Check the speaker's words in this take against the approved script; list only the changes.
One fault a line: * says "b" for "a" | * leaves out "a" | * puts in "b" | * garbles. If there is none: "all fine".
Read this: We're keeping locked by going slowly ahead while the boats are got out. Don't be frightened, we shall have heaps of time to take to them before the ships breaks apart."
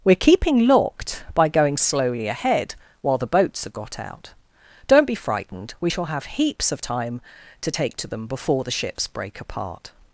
* says "break" for "breaks"